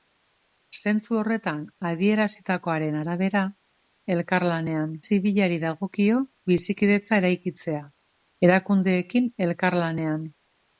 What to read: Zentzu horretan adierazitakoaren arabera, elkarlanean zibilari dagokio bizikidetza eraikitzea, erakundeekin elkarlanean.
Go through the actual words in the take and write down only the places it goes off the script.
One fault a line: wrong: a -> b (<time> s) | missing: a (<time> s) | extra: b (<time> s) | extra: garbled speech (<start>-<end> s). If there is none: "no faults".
no faults